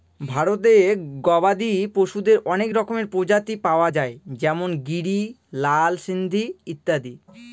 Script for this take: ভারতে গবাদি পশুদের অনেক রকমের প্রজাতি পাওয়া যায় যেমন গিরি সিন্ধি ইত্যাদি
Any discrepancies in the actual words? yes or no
yes